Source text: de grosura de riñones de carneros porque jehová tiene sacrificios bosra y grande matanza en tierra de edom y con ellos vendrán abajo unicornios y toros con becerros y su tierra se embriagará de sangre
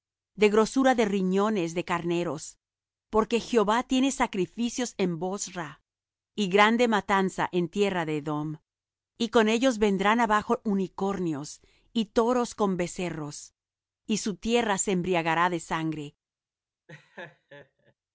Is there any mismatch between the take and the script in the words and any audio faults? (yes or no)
yes